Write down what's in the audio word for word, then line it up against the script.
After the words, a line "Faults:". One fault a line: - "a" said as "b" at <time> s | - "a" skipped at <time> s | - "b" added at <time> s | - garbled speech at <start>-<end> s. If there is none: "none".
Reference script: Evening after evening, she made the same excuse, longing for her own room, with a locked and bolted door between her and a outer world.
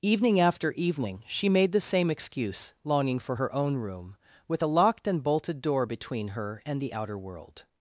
Evening after evening, she made the same excuse, longing for her own room, with a locked and bolted door between her and the outer world.
Faults:
- "a" said as "the" at 6.8 s